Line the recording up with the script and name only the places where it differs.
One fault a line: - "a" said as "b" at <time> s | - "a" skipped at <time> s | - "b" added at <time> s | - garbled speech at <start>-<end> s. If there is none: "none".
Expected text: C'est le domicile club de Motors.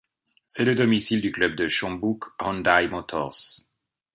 - "du" added at 1.2 s
- "Chonbuk Hyundai" added at 1.7 s